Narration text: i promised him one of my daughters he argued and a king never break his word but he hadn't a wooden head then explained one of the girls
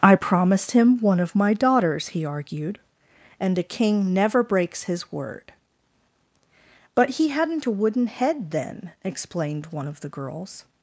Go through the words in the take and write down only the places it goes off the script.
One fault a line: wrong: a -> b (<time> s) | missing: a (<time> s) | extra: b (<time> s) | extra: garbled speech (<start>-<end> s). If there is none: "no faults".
wrong: break -> breaks (4.4 s)